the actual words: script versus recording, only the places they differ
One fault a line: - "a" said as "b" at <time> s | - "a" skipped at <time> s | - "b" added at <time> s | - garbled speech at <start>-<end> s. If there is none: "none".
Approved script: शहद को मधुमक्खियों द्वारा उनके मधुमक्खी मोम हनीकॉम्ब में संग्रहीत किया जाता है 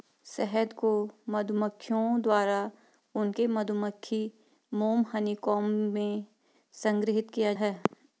- "जाता" skipped at 7.5 s